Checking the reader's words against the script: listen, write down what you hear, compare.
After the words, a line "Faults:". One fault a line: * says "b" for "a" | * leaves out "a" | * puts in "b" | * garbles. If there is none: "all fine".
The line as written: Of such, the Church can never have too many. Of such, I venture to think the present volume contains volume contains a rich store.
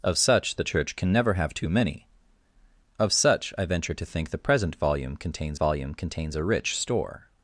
Of such, the Church can never have too many. Of such, I venture to think the present volume contains volume contains a rich store.
Faults:
all fine